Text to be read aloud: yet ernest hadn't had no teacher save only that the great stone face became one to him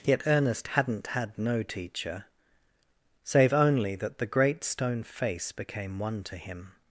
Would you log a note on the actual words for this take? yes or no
no